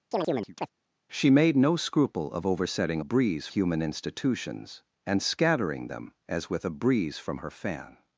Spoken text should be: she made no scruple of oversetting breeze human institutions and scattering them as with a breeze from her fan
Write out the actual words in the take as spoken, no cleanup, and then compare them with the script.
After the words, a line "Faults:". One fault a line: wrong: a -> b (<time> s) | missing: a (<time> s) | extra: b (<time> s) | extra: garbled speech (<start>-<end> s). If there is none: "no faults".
she made no scruple of oversetting breeze human institutions and scattering them as with a breeze from her fan
Faults:
no faults